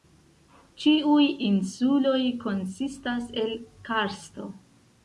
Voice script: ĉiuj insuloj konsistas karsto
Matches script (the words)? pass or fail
fail